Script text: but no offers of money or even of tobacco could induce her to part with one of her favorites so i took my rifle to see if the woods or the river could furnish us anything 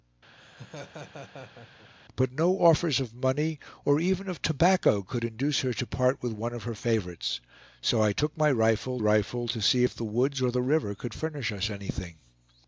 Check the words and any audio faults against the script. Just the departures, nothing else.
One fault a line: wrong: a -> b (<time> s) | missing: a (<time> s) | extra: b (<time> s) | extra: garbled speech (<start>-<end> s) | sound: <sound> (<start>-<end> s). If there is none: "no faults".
sound: laugh (0.4-1.9 s)
extra: rifle (9.0 s)